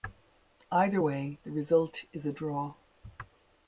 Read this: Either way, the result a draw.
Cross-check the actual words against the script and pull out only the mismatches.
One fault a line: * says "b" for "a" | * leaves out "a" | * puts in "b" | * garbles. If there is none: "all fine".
* puts in "is"